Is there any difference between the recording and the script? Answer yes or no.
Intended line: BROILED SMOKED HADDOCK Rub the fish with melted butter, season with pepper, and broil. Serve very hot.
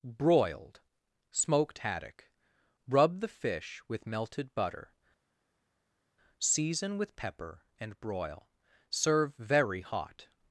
no